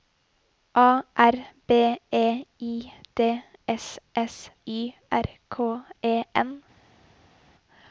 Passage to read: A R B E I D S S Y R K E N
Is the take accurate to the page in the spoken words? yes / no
yes